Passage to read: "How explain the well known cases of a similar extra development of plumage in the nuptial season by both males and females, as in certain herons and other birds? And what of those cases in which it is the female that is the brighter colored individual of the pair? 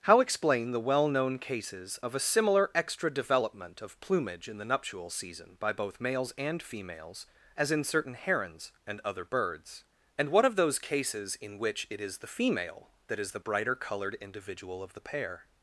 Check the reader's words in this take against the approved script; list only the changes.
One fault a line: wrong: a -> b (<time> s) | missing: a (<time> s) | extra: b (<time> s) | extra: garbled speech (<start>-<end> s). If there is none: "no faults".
no faults